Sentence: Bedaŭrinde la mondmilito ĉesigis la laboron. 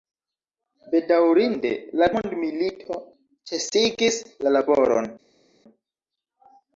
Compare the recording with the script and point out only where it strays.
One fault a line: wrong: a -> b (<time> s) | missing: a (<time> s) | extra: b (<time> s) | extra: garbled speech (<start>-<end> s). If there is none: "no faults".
no faults